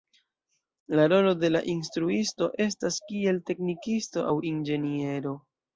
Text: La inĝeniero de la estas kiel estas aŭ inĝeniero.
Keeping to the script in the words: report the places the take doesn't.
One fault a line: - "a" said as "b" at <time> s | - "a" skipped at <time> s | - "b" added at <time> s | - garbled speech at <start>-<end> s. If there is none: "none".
- "inĝeniero" said as "rolo" at 1.1 s
- "instruisto" added at 1.8 s
- "estas" said as "teknikisto" at 3.5 s